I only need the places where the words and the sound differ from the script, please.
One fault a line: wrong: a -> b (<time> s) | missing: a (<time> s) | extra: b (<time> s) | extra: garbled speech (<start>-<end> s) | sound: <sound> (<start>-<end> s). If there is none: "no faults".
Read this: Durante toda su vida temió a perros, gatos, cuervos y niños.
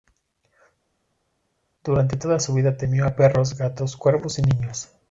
no faults